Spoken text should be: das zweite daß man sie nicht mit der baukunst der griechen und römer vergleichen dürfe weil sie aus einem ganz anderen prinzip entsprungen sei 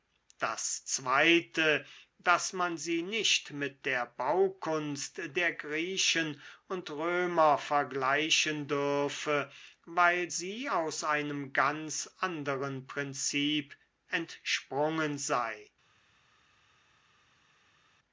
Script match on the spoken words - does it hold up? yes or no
yes